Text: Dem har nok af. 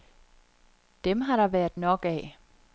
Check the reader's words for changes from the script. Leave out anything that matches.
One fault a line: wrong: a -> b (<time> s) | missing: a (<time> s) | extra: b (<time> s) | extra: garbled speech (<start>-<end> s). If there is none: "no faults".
extra: der været (1.4 s)